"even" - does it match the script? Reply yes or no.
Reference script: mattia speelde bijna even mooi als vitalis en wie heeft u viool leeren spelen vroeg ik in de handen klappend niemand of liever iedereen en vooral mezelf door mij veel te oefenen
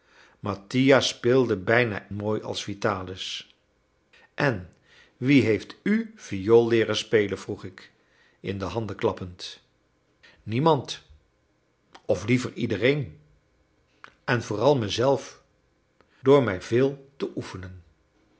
no